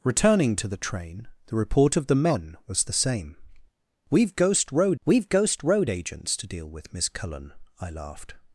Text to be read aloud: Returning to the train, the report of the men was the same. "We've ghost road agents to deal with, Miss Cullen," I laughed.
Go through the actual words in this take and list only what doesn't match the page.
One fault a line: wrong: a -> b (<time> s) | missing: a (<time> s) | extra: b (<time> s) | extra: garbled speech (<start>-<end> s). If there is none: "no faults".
extra: we've ghost road (5.0 s)